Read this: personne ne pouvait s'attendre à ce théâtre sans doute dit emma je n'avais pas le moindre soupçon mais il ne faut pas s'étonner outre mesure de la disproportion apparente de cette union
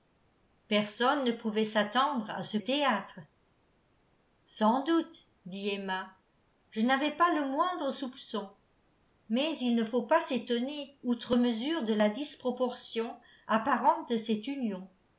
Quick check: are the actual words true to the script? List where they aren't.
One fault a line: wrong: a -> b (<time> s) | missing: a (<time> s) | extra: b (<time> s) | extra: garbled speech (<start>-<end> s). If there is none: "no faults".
no faults